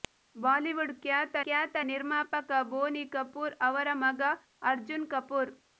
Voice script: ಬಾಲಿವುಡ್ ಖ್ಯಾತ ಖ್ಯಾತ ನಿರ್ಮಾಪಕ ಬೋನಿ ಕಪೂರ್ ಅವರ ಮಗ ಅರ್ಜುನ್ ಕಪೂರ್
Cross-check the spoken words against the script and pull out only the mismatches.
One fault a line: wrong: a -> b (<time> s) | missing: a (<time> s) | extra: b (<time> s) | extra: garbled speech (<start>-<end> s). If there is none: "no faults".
no faults